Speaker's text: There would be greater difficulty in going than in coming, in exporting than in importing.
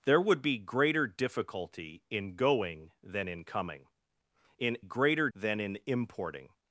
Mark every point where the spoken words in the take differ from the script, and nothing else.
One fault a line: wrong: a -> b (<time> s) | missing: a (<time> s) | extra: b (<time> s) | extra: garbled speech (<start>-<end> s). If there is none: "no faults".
wrong: exporting -> greater (4.8 s)